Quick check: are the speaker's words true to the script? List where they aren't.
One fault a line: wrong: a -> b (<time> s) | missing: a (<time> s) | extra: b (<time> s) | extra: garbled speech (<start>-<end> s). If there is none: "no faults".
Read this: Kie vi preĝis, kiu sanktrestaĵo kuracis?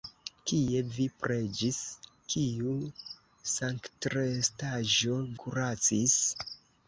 no faults